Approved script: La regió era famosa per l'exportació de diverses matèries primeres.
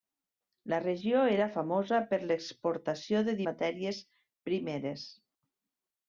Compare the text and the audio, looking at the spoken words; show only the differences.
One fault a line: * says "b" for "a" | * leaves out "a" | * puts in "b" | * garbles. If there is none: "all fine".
* leaves out "diverses"